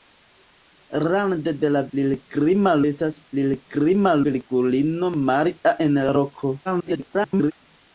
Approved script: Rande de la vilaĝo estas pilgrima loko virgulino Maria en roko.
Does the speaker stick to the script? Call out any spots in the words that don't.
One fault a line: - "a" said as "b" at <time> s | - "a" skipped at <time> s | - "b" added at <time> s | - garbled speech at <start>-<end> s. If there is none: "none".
- "vilaĝo" said as "pilgrima" at 2.0 s
- "loko" skipped at 4.2 s
- garbled speech at 6.6-7.5 s